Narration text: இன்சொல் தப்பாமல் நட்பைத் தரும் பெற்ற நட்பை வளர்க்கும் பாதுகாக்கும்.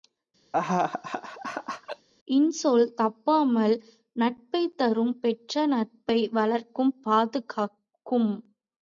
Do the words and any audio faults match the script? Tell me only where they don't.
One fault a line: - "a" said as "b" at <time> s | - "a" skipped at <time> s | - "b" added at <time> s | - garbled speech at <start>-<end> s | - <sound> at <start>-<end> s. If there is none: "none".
- laugh at 0.5-2.1 s